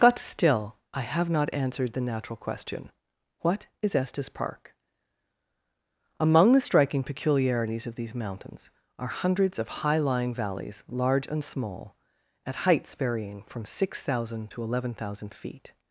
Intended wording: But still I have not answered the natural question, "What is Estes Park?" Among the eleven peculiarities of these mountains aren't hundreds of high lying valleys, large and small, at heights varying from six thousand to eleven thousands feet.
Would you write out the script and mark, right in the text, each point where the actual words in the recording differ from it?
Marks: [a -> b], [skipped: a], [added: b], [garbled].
But still I have not answered the natural question, "What is Estes Park?" Among the [eleven -> striking] peculiarities of these mountains [aren't -> are] hundreds of high lying valleys, large and small, at heights varying from six thousand to eleven [thousands -> thousand] feet.